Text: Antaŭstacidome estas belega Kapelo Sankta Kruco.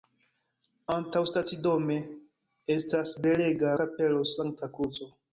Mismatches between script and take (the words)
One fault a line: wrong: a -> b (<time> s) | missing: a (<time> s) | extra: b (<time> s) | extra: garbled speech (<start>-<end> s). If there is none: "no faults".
no faults